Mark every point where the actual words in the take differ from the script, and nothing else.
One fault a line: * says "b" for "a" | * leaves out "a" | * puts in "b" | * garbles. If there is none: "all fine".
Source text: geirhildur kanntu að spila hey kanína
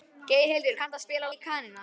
all fine